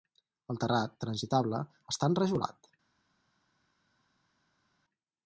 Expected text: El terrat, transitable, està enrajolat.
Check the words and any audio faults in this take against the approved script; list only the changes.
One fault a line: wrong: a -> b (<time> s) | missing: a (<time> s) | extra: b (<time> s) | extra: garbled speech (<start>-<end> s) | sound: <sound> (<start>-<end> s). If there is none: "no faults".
no faults